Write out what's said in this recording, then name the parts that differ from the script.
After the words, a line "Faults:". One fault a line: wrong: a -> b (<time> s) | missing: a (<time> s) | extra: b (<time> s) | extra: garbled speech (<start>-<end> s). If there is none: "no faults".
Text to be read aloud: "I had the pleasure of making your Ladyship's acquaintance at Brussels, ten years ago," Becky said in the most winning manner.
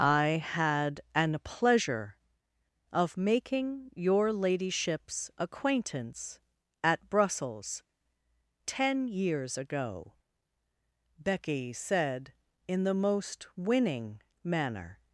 "I had an pleasure of making your Ladyship's acquaintance at Brussels, ten years ago," Becky said in the most winning manner.
Faults:
wrong: the -> an (1.1 s)